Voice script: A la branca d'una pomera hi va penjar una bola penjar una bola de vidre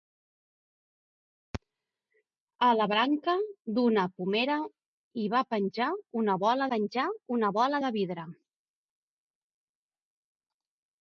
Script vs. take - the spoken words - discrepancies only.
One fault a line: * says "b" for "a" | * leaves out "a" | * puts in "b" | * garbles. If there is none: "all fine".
all fine